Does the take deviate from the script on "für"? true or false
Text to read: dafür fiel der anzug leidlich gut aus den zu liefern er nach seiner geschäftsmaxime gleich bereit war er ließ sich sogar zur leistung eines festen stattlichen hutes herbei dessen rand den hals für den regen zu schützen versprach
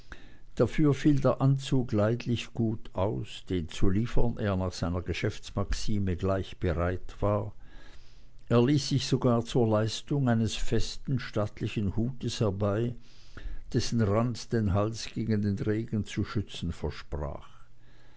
true